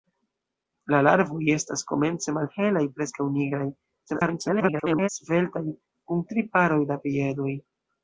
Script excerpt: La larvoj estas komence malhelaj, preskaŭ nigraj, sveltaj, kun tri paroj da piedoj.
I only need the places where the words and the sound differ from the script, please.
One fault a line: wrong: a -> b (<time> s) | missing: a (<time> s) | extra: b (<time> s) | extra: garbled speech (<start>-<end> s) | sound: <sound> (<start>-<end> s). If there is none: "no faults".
extra: garbled speech (4.1-5.1 s)